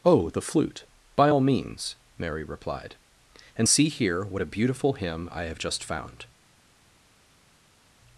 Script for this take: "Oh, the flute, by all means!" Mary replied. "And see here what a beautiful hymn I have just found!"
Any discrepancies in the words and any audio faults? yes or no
no